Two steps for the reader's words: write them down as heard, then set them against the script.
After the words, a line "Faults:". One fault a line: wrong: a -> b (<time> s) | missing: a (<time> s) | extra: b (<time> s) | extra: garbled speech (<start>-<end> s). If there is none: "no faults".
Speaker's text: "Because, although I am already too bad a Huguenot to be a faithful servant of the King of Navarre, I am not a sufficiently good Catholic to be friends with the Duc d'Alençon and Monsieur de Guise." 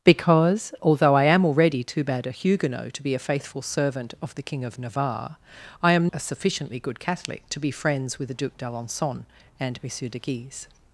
"Because, although I am already too bad a Huguenot to be a faithful servant of the King of Navarre, I am a sufficiently good Catholic to be friends with the Duc d'Alençon and Monsieur de Guise."
Faults:
missing: not (6.1 s)